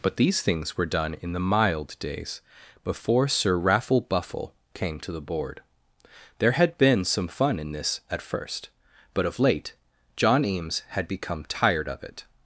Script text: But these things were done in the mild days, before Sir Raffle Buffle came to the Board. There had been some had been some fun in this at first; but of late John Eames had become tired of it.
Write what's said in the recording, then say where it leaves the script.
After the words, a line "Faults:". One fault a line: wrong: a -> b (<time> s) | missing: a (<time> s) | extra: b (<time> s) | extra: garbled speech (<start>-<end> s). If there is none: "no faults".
But these things were done in the mild days, before Sir Raffle Buffle came to the Board. There had been some fun in this at first; but of late John Eames had become tired of it.
Faults:
missing: had been some (7.3 s)